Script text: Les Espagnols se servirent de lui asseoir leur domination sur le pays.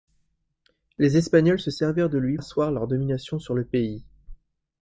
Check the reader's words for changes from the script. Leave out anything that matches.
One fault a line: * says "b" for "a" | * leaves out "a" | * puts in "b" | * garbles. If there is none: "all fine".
all fine